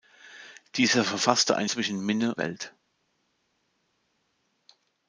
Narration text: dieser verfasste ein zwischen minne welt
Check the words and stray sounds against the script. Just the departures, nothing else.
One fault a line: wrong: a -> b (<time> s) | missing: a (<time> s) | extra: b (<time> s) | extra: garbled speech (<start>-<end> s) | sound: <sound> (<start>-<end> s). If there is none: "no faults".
no faults